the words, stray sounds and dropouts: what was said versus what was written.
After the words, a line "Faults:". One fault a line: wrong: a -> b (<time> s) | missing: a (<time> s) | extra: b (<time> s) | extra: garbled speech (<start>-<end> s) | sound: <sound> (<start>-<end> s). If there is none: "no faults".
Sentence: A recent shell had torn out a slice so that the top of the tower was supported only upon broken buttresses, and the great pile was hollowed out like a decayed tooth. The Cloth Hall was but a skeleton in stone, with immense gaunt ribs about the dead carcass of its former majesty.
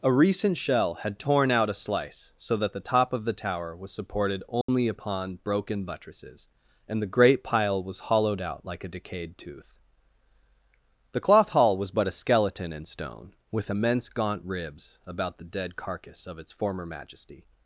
A recent shell had torn out a slice so that the top of the tower was supported only upon broken buttresses, and the great pile was hollowed out like a decayed tooth. The Cloth Hall was but a skeleton in stone, with immense gaunt ribs about the dead carcass of its former majesty.
Faults:
sound: dropout (4.6-4.7 s)